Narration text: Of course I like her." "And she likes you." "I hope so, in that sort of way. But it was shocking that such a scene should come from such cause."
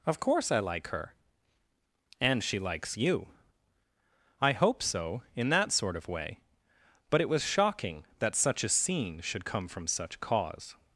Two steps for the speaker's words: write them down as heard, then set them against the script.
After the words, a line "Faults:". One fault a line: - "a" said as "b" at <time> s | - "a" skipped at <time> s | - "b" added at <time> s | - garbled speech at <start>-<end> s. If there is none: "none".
Of course I like her." "And she likes you." "I hope so, in that sort of way. But it was shocking that such a scene should come from such cause."
Faults:
none